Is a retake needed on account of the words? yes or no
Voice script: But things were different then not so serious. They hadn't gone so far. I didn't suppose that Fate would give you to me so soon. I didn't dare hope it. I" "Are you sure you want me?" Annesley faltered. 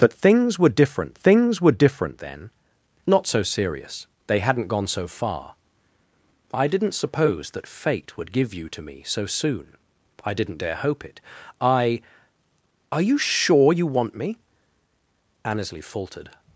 yes